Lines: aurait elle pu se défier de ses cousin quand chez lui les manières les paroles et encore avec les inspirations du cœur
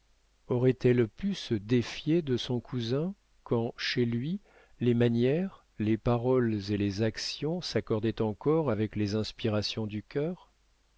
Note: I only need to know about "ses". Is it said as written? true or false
false